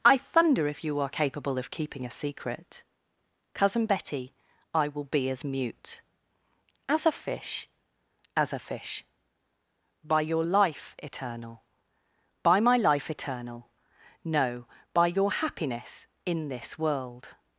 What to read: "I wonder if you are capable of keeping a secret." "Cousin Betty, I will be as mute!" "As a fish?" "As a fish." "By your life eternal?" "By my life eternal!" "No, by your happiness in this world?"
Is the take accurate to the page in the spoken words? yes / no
no